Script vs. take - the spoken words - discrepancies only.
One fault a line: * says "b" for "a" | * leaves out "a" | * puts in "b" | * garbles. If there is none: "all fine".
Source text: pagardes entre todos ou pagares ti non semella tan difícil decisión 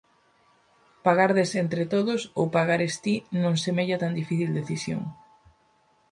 all fine